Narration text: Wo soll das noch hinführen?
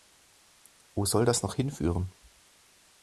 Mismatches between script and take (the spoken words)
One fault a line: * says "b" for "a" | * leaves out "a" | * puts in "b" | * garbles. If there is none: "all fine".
all fine